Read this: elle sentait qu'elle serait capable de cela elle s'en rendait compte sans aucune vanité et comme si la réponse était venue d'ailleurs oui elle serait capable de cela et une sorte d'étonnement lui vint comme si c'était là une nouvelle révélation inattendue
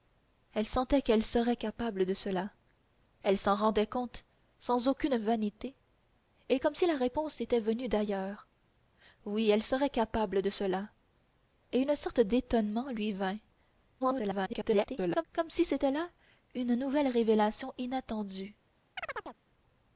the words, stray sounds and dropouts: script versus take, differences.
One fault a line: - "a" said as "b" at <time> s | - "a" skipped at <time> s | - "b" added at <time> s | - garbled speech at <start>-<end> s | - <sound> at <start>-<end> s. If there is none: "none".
- garbled speech at 14.0-15.2 s
- chirp at 19.0-19.4 s